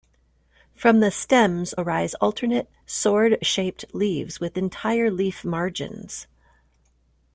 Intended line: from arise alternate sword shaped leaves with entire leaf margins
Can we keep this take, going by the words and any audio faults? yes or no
no